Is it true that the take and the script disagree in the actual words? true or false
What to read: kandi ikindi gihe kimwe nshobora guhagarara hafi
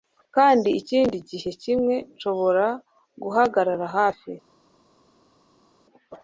false